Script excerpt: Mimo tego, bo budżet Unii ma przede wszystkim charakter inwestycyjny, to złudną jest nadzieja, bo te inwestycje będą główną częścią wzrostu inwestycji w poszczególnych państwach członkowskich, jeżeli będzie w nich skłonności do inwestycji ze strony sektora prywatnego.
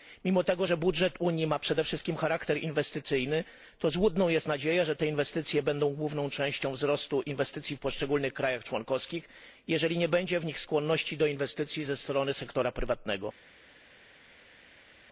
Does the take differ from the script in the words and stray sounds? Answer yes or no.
yes